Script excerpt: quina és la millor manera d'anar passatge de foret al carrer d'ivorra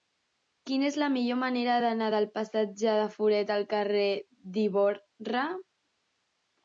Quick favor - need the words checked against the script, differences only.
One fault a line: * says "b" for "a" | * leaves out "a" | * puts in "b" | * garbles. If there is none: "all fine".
* puts in "del"